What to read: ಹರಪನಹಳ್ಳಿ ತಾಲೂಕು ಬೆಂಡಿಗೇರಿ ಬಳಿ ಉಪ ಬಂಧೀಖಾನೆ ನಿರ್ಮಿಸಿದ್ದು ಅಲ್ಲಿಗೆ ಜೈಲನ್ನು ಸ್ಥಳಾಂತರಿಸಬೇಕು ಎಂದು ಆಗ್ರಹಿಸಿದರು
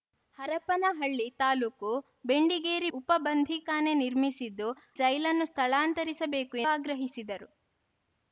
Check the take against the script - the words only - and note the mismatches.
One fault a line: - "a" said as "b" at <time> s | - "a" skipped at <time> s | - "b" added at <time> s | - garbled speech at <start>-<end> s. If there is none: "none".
- "ಬಳಿ" skipped at 2.9 s
- "ಅಲ್ಲಿಗೆ" skipped at 4.7 s
- "ಎಂದು" skipped at 6.6 s